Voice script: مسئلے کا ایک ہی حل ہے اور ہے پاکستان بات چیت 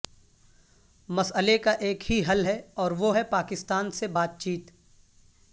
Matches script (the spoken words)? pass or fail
fail